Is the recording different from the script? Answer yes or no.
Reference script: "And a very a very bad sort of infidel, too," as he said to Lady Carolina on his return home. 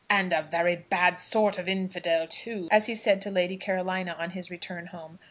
yes